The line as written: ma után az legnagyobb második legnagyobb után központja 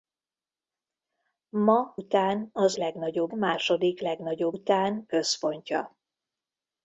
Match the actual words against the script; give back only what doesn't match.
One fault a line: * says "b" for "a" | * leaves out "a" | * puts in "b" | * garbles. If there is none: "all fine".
all fine